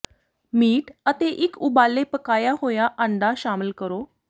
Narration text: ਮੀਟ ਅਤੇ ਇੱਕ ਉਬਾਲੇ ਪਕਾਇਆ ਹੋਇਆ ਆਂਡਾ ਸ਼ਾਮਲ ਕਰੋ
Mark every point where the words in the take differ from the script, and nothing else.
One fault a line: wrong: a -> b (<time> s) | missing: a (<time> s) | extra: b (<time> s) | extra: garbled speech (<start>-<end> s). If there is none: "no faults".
no faults